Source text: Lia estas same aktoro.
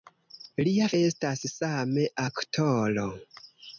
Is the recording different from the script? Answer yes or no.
no